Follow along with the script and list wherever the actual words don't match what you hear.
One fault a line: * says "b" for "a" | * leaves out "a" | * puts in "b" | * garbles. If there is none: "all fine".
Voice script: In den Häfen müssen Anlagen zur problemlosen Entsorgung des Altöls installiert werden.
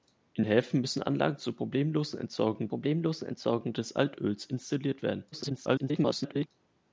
* leaves out "den"
* puts in "problemlosen Entsorgung"
* garbles